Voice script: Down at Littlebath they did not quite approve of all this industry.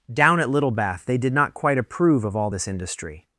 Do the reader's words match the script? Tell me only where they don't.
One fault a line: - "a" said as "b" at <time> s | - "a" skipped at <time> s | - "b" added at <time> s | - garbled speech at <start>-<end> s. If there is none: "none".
none